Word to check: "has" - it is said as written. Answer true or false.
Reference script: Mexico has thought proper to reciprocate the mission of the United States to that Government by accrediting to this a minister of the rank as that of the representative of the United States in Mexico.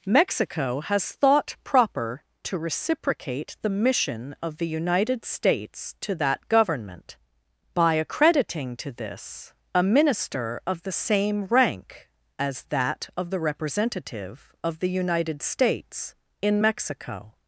true